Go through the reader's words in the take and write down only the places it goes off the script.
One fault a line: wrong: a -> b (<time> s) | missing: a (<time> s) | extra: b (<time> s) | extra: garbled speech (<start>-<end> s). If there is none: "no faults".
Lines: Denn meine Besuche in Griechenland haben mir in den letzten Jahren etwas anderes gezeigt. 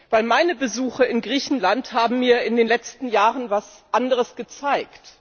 no faults